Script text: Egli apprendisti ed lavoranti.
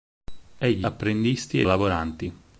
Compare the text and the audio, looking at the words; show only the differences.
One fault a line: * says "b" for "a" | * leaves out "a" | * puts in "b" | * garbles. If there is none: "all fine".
all fine